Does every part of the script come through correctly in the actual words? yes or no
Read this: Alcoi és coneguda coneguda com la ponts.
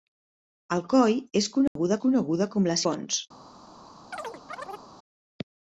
yes